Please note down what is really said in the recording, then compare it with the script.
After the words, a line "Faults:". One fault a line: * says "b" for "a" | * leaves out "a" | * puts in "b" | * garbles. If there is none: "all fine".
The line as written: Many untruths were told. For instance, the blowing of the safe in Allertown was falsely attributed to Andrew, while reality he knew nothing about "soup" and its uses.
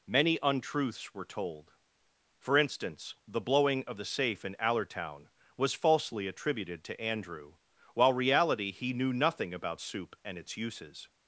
Many untruths were told. For instance, the blowing of the safe in Allertown was falsely attributed to Andrew, while reality he knew nothing about "soup" and its uses.
Faults:
all fine